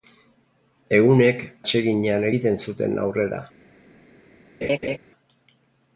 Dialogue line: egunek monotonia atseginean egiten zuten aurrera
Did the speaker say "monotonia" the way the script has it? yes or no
no